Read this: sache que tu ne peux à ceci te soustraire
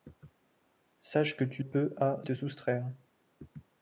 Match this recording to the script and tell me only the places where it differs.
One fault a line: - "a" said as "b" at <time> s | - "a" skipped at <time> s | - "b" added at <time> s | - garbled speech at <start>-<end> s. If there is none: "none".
- "ne" skipped at 1.6 s
- "ceci" skipped at 2.2 s